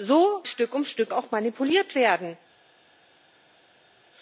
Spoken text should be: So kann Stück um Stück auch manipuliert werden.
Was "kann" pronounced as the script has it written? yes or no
no